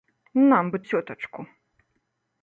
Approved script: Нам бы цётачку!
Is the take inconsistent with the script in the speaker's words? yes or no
no